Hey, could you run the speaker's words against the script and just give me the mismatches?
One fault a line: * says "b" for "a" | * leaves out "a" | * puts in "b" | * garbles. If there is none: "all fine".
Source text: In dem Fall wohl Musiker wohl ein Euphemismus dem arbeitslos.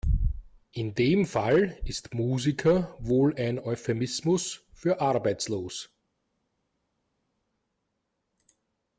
* says "ist" for "wohl"
* says "für" for "dem"